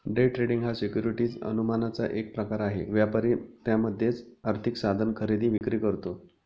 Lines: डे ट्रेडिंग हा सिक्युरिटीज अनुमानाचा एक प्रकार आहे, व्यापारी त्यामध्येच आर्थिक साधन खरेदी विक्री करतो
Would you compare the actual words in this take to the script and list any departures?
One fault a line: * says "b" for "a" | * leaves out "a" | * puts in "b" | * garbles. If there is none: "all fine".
all fine